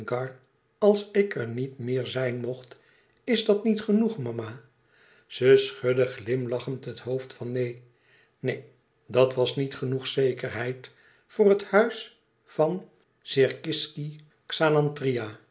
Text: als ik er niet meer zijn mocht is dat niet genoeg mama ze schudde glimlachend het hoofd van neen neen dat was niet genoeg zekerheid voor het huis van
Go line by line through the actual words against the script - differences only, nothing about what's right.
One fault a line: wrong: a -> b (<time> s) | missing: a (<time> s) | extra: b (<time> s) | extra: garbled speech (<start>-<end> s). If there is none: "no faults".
no faults